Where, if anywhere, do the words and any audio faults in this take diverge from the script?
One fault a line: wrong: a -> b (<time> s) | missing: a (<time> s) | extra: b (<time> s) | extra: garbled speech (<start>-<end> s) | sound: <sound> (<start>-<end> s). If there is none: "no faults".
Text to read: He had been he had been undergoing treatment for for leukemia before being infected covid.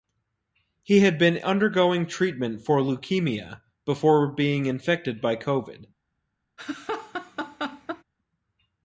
missing: he had been (1.4 s)
missing: for (2.8 s)
extra: by (5.2 s)
sound: laugh (6.6-8.0 s)